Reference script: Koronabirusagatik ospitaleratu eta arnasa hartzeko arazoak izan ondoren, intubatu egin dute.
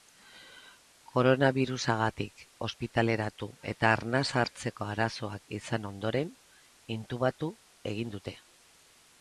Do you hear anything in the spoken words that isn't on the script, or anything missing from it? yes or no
no